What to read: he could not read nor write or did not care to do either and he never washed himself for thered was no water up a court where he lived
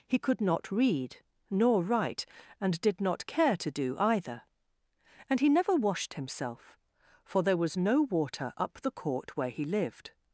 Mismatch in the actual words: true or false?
true